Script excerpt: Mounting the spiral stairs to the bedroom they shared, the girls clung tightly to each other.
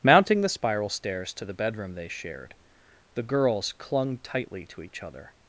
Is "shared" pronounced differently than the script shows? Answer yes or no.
no